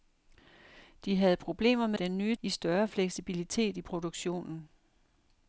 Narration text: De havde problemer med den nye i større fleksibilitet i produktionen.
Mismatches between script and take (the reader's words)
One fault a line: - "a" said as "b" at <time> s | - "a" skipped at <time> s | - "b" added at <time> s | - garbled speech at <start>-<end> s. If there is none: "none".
none